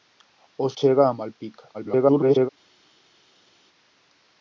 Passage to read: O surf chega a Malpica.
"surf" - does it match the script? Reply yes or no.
no